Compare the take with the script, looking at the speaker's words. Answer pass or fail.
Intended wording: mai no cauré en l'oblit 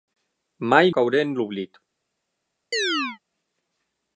fail